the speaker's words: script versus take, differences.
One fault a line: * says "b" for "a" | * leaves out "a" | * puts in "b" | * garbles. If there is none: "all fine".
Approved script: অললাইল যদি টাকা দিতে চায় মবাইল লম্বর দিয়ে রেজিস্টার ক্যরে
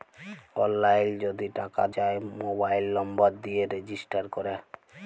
* leaves out "দিতে"